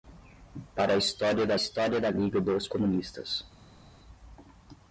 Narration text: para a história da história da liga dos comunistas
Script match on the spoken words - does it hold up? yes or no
yes